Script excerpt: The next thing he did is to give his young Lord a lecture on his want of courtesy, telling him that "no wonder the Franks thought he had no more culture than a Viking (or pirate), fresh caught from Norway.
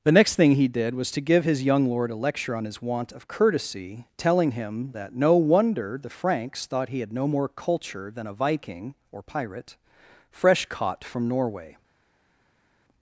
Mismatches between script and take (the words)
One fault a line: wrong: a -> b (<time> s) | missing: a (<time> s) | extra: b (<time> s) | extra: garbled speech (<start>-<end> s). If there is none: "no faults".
wrong: is -> was (0.9 s)